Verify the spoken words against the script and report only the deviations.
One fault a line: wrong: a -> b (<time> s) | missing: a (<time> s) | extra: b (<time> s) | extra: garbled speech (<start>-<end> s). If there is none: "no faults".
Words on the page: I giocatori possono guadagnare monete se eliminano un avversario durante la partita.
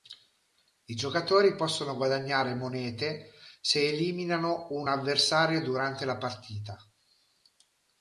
no faults